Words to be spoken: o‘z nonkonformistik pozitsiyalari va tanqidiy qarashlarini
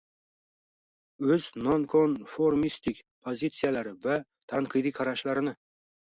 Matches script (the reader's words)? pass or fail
pass